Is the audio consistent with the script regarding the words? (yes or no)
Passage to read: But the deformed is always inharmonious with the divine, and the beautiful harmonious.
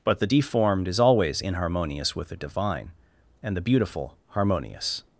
yes